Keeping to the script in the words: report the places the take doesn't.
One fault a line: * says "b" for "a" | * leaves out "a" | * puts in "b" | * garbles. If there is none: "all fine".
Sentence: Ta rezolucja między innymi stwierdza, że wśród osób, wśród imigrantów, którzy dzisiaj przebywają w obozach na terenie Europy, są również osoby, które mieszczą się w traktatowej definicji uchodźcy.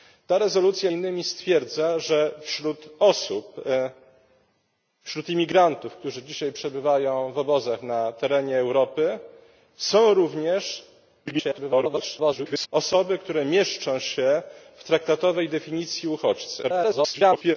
* leaves out "między"
* garbles
* garbles